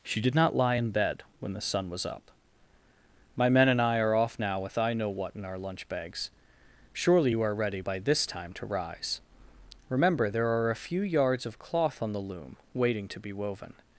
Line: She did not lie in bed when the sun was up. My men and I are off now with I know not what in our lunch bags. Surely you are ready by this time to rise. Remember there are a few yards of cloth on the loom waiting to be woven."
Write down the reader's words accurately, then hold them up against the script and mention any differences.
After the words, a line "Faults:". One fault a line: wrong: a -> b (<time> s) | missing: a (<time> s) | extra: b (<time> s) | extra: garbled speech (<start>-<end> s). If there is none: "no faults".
She did not lie in bed when the sun was up. My men and I are off now with I know what in our lunch bags. Surely you are ready by this time to rise. Remember there are a few yards of cloth on the loom waiting to be woven."
Faults:
missing: not (5.1 s)